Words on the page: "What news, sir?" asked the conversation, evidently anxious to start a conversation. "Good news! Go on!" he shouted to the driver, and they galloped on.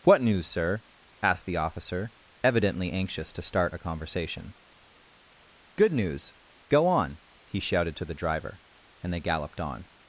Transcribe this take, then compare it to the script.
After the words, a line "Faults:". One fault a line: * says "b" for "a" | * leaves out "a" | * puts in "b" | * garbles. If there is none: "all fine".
"What news, sir?" asked the officer, evidently anxious to start a conversation. "Good news! Go on!" he shouted to the driver, and they galloped on.
Faults:
* says "officer" for "conversation"